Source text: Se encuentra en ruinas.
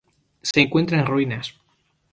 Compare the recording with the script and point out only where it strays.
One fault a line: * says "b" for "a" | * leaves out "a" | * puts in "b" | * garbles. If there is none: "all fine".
all fine